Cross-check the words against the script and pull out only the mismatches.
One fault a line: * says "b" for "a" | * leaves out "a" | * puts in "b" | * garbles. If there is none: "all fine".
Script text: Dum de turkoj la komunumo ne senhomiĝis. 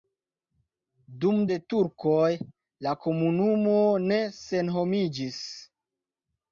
all fine